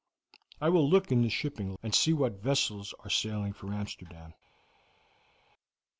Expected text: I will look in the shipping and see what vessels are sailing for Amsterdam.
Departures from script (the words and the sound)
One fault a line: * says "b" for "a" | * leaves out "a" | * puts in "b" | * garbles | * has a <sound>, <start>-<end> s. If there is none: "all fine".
all fine